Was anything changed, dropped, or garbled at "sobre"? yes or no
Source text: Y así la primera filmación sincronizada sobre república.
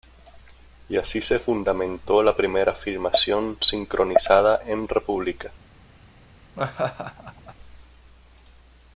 yes